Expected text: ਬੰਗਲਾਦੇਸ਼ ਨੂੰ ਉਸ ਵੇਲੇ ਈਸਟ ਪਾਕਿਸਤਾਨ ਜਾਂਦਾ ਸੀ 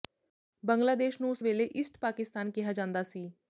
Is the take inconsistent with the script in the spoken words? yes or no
yes